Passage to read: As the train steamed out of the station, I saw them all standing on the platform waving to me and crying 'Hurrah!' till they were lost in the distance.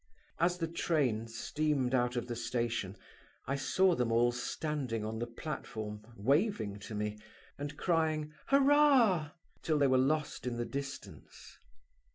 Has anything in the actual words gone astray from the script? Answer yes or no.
no